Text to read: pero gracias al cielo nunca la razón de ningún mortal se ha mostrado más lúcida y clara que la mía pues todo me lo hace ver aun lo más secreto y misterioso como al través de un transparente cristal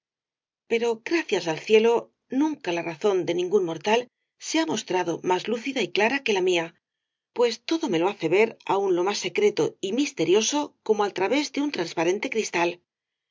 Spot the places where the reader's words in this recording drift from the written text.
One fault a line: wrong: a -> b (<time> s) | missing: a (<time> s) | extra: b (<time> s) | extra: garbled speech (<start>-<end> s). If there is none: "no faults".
no faults